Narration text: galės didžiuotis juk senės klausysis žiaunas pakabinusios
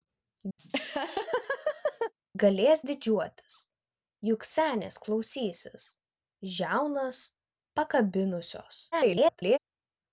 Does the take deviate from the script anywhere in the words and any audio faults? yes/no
yes